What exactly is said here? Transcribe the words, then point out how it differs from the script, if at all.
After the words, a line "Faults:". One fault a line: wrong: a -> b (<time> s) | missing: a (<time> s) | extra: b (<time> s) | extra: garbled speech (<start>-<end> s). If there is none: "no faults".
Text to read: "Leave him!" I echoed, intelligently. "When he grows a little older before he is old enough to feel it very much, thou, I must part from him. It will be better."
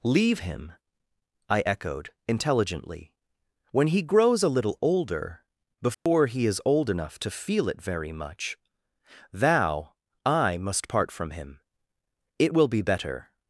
"Leave him!" I echoed, intelligently. "When he grows a little older before he is old enough to feel it very much, thou, I must part from him. It will be better."
Faults:
no faults